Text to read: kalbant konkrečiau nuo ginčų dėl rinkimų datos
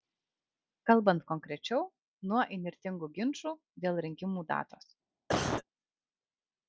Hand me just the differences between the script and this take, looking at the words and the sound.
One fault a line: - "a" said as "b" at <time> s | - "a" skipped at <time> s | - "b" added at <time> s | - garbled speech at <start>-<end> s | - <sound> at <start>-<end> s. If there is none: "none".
- "įnirtingų" added at 2.6 s
- cough at 5.3-5.6 s